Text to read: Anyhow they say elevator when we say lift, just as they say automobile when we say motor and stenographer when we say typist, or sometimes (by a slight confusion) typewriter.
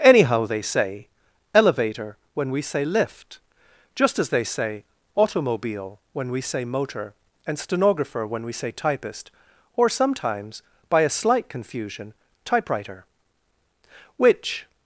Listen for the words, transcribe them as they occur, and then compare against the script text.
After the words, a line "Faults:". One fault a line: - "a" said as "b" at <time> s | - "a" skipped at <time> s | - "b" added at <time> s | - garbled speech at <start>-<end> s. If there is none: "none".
Anyhow they say elevator when we say lift, just as they say automobile when we say motor and stenographer when we say typist, or sometimes (by a slight confusion) typewriter. Which
Faults:
- "Which" added at 14.2 s